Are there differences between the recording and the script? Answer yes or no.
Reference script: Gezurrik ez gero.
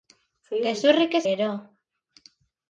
no